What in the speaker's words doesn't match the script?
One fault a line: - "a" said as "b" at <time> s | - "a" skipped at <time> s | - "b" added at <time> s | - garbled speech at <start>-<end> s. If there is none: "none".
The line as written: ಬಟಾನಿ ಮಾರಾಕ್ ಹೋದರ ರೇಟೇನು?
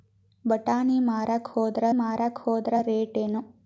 - "ಮಾರಾಕ್ ಹೋದರ" added at 1.9 s